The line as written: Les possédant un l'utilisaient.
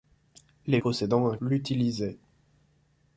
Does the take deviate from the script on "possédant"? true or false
false